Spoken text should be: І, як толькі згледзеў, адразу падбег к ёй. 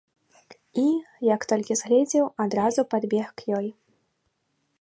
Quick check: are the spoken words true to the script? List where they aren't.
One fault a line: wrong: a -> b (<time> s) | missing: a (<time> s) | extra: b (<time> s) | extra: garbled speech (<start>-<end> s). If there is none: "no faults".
no faults